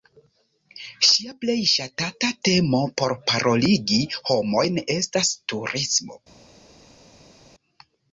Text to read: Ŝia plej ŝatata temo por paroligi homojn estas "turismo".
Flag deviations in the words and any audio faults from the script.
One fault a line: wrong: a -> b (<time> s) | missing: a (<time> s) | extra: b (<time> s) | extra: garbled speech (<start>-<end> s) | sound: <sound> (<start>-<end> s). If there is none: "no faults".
no faults